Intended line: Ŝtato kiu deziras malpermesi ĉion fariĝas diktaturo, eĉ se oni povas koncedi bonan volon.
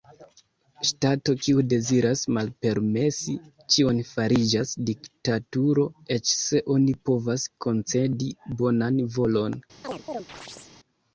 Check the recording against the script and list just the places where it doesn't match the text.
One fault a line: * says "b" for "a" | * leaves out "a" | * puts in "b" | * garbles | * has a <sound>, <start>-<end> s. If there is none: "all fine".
* has a chirp, 9.8-10.7 s